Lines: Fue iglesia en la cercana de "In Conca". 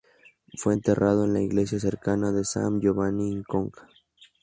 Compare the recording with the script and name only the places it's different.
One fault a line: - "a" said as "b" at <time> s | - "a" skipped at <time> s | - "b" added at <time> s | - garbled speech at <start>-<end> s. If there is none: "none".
- "iglesia" said as "enterrado" at 0.7 s
- "iglesia" added at 1.4 s
- "San Giovanni" added at 2.4 s